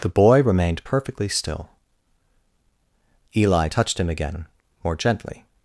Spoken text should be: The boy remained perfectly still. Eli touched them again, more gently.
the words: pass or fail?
fail